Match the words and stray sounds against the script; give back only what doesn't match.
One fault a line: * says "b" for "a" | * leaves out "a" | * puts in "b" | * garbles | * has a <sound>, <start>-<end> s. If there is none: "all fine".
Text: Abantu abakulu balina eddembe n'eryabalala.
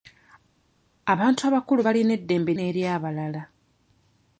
all fine